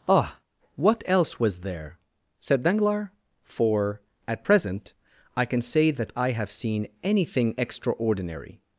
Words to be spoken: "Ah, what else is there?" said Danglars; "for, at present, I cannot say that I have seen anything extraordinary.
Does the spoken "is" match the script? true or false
false